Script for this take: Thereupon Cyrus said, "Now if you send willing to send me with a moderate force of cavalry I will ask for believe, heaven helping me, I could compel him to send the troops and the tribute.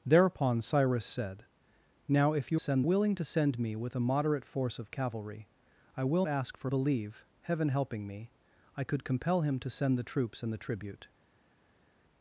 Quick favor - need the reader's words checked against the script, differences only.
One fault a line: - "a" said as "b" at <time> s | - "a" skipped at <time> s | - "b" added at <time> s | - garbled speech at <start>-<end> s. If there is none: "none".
none